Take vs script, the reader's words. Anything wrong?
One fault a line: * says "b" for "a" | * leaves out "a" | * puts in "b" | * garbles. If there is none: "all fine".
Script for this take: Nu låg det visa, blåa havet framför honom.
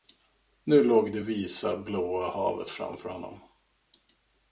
all fine